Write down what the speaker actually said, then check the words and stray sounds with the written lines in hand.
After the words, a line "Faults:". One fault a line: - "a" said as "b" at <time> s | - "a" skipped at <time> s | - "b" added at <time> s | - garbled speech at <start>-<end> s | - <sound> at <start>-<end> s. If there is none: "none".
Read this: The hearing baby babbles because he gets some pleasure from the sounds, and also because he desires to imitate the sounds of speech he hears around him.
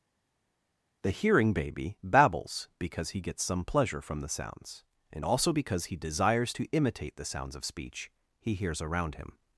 The hearing baby babbles because he gets some pleasure from the sounds, and also because he desires to imitate the sounds of speech he hears around him.
Faults:
none